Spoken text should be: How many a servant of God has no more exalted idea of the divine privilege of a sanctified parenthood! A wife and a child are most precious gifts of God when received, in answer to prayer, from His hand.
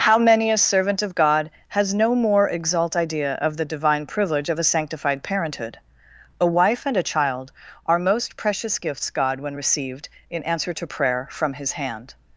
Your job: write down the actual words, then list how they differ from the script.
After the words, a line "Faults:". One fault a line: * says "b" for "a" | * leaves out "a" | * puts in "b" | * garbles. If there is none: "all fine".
How many a servant of God has no more exalt idea of the divine privilege of a sanctified parenthood! A wife and a child are most precious gifts God when received, in answer to prayer, from His hand.
Faults:
* says "exalt" for "exalted"
* leaves out "of"